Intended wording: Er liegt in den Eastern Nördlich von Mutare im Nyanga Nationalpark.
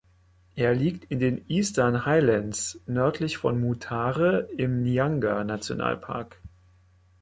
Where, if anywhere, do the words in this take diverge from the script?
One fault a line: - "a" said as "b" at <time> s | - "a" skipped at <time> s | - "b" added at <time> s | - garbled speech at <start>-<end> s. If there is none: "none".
- "Highlands" added at 2.1 s